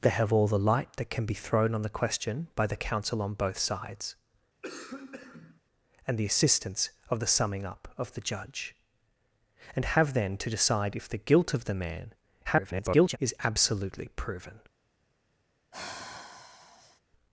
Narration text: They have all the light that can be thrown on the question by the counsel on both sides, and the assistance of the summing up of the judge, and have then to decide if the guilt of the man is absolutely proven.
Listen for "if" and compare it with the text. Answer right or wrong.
right